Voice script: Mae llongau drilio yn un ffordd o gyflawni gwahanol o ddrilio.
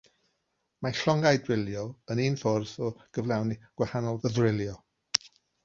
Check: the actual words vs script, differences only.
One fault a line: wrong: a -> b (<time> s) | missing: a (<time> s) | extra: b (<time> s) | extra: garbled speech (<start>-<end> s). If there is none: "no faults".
no faults